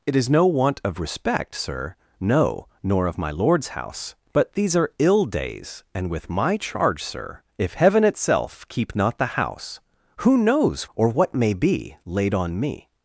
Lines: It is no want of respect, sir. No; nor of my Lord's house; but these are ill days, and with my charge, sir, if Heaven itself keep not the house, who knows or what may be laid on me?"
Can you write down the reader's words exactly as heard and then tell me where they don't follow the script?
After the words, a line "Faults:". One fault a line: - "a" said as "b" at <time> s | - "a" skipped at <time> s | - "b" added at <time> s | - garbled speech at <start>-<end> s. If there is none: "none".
It is no want of respect, sir. No; nor of my Lord's house; but these are ill days, and with my charge, sir, if Heaven itself keep not the house, who knows or what may be laid on me?"
Faults:
none